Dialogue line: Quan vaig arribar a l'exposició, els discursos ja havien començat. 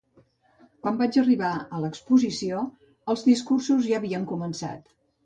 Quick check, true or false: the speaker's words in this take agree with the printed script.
true